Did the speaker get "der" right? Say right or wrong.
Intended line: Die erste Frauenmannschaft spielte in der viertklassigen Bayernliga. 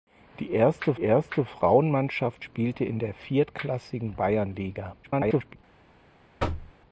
right